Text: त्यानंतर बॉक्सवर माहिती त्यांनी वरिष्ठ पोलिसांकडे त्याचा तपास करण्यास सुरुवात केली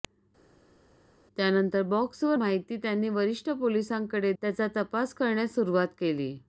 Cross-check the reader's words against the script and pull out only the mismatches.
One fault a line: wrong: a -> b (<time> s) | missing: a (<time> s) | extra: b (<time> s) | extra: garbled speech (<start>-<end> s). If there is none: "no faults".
no faults